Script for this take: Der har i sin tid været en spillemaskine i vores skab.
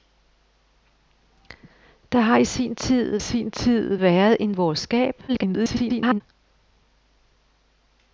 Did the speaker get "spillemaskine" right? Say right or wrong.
wrong